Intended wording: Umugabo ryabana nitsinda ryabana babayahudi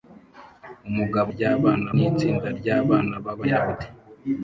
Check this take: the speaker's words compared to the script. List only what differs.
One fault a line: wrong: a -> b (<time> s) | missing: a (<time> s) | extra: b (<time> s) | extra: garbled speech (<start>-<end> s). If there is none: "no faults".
no faults